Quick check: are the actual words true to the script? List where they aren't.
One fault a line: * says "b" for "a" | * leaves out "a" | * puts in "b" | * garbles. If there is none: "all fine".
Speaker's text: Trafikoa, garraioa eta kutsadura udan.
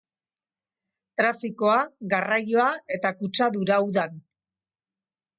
all fine